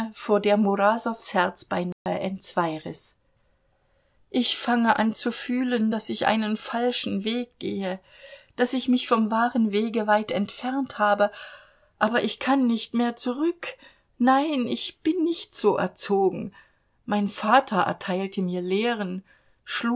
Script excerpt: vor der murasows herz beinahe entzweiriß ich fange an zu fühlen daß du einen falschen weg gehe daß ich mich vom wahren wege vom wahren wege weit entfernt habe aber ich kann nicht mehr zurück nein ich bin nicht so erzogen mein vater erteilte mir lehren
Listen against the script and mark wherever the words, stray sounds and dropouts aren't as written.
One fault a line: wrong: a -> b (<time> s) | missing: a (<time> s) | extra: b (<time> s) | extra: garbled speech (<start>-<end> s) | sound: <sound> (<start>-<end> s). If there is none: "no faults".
sound: dropout (1.9-2.1 s)
wrong: du -> ich (6.1 s)
missing: vom wahren wege (10.1 s)